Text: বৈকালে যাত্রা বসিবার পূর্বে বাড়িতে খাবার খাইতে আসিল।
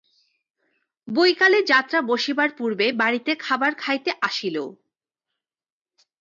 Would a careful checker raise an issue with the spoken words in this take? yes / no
no